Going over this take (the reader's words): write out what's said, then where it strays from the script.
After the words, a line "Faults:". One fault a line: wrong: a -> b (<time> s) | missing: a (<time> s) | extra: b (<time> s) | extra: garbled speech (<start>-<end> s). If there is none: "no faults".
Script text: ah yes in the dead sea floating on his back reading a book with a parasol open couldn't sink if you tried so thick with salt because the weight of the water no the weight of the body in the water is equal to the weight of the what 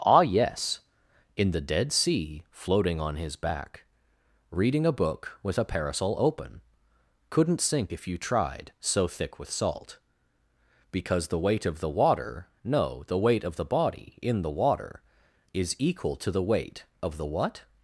ah yes in the dead sea floating on his back reading a book with a parasol open couldn't sink if you tried so thick with salt because the weight of the water no the weight of the body in the water is equal to the weight of the what
Faults:
no faults